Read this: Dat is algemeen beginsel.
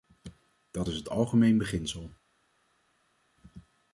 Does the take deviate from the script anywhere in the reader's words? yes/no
yes